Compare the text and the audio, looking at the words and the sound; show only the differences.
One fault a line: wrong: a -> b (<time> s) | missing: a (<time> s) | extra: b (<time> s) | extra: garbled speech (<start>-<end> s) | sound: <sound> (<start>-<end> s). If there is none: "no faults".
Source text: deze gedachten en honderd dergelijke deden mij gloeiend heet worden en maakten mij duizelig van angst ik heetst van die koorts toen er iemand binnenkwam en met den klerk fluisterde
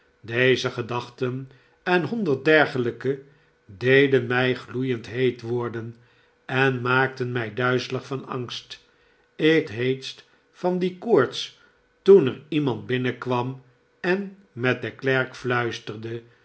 no faults